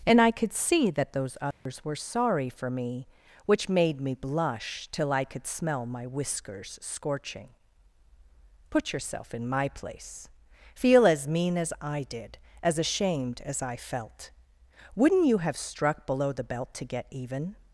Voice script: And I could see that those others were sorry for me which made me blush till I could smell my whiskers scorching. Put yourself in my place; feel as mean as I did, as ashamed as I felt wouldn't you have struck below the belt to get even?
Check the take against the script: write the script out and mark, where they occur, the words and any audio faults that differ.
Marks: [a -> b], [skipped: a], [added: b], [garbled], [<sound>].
And I could see that those others [dropout] were sorry for me which made me blush till I could smell my whiskers scorching. Put yourself in my place; feel as mean as I did, as ashamed as I felt wouldn't you have struck below the belt to get even?